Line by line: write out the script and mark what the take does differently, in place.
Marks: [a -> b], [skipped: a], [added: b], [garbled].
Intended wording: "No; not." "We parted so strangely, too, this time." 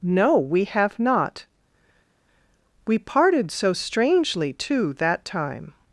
"No; [added: we have] not." "We parted so strangely, too, [this -> that] time."